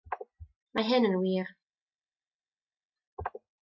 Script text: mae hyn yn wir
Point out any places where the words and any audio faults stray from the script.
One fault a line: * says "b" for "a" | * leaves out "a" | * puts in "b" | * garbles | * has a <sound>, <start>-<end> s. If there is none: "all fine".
all fine